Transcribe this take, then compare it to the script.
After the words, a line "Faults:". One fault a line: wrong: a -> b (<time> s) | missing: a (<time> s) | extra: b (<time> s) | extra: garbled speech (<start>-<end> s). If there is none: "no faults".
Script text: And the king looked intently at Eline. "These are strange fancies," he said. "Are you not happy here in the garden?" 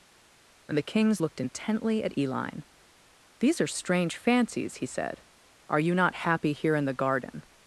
And the kings looked intently at Eline. "These are strange fancies," he said. "Are you not happy here in the garden?"
Faults:
wrong: king -> kings (0.8 s)